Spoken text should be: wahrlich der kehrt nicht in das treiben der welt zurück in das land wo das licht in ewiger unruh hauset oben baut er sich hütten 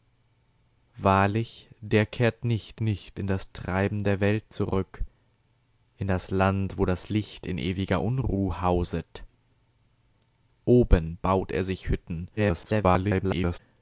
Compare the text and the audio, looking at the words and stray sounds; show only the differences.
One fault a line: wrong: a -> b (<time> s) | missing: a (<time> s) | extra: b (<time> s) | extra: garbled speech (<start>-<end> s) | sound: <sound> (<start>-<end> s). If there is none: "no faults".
extra: nicht (2.8 s)
extra: garbled speech (12.4-13.6 s)